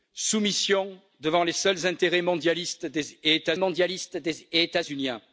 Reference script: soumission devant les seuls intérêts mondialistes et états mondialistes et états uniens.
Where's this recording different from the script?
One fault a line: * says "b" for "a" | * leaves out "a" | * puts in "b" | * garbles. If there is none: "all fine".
all fine